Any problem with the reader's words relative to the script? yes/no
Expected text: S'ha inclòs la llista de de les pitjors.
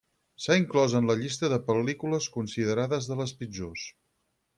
yes